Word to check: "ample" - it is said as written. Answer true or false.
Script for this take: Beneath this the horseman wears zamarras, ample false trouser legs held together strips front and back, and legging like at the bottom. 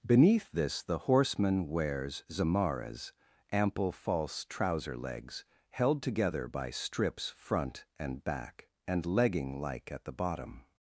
true